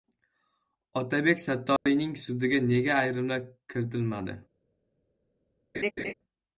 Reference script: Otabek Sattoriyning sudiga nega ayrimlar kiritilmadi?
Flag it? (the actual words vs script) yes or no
no